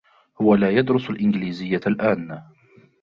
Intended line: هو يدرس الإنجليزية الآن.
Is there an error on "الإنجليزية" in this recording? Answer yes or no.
no